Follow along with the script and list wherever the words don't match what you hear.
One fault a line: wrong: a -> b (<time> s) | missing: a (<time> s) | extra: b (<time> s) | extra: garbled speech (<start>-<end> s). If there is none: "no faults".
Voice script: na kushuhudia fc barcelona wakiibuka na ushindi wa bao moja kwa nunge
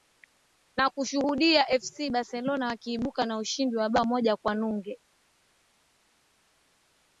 no faults